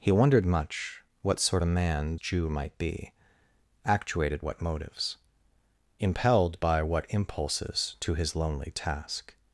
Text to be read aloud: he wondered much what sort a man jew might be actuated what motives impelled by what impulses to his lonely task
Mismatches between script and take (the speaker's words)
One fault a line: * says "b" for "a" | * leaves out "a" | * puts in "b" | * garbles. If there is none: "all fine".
all fine